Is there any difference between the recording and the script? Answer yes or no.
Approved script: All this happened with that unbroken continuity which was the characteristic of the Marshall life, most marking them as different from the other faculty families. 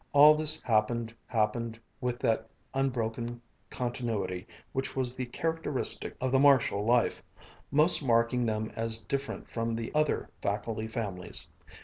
yes